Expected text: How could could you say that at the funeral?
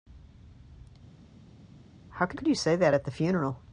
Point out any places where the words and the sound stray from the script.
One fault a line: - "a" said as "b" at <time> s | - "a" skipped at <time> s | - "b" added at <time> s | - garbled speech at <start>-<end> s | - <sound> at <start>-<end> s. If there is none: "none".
none